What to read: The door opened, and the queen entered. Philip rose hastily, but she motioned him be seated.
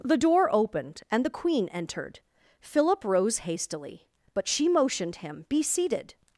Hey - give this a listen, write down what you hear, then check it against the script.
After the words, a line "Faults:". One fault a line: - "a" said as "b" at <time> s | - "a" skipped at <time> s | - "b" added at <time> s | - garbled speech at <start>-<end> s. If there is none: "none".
The door opened, and the queen entered. Philip rose hastily, but she motioned him be seated.
Faults:
none